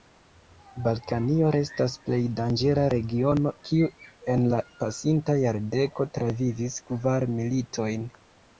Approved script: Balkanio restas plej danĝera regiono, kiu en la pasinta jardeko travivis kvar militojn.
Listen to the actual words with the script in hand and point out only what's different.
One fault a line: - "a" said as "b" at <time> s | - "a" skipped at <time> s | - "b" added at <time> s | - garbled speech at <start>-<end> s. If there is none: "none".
none